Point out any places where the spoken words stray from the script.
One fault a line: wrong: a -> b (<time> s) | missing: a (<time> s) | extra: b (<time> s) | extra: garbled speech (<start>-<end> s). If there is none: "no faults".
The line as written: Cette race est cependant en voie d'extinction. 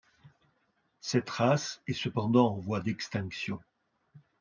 no faults